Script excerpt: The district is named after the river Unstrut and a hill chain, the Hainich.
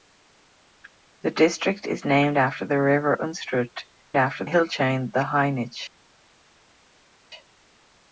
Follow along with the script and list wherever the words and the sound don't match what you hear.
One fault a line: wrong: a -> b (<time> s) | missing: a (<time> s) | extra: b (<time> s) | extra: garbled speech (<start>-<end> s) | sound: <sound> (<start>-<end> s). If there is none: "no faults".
wrong: and -> after (4.2 s)